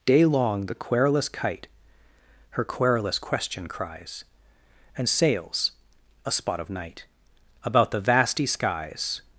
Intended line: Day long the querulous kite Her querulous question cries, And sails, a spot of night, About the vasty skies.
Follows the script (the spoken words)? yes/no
yes